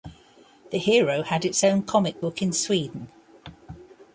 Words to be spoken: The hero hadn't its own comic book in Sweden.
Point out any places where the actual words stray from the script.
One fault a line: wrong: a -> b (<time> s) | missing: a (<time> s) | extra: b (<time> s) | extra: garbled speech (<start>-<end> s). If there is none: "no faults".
wrong: hadn't -> had (1.2 s)